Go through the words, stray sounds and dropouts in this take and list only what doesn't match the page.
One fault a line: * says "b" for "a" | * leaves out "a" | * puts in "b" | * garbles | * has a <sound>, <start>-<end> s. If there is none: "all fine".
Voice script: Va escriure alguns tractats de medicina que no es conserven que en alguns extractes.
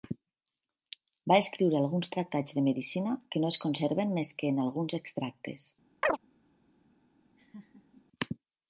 * puts in "més"
* has a chirp, 6.0-6.2 s
* has a laugh, 7.4-8.1 s